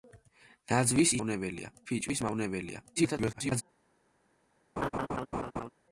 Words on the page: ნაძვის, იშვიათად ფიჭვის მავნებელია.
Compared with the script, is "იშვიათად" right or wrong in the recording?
wrong